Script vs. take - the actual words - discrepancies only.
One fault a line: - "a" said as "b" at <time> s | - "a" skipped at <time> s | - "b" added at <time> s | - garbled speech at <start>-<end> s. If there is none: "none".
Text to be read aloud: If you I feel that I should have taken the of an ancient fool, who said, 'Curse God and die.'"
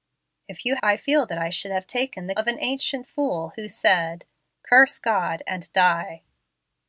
none